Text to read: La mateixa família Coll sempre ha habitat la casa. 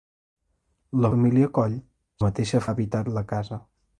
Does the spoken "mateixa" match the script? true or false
false